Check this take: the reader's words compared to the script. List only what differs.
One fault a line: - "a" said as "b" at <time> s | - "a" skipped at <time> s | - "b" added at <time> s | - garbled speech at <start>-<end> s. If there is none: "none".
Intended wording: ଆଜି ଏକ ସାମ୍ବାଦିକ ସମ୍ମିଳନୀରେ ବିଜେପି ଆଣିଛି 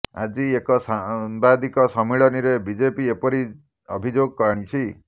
- "ଏପରି ଅଭିଯୋଗ" added at 3.2 s